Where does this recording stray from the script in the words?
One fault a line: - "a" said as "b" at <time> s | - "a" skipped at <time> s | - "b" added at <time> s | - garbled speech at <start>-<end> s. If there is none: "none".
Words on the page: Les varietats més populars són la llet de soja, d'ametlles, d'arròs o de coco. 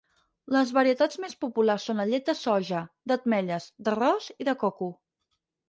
- "o" said as "i" at 4.4 s